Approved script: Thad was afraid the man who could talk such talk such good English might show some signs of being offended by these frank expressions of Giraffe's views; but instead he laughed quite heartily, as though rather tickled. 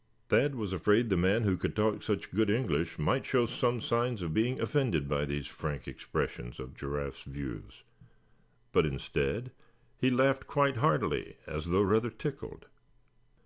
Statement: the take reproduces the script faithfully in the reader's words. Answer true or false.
false